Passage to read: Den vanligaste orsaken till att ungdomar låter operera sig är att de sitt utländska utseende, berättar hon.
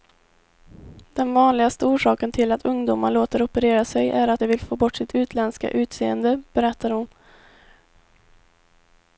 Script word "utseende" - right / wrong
right